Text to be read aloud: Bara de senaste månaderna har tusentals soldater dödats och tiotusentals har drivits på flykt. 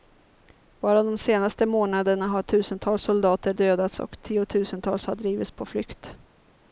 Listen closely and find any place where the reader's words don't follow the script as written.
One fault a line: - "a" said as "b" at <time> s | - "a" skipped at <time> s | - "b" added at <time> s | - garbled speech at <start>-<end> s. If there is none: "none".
none